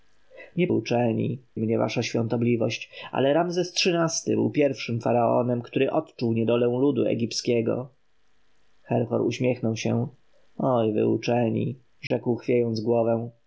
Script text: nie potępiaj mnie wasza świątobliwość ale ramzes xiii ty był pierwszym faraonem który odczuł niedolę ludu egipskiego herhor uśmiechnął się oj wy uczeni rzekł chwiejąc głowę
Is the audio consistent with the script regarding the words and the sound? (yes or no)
no